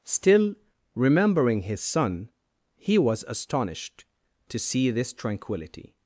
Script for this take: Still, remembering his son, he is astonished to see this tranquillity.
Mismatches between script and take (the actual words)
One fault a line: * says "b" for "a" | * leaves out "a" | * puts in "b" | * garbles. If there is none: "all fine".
* says "was" for "is"